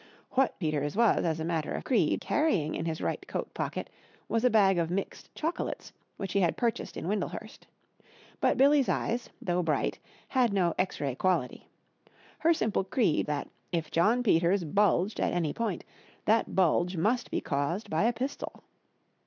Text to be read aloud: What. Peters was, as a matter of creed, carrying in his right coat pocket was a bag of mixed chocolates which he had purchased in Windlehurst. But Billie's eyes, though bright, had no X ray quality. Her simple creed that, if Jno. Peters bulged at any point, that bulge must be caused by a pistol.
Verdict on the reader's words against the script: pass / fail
pass